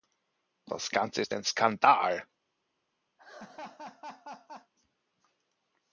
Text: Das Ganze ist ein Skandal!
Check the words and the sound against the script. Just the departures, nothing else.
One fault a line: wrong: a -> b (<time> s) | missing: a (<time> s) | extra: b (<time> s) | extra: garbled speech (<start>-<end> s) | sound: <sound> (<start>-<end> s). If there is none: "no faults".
sound: laugh (3.2-4.7 s)